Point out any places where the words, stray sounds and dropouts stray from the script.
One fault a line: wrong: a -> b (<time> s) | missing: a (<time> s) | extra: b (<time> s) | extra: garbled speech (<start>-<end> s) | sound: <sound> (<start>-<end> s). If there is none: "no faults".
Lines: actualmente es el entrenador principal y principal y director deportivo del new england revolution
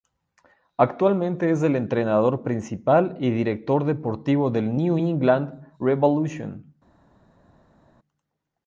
missing: principal y (3.3 s)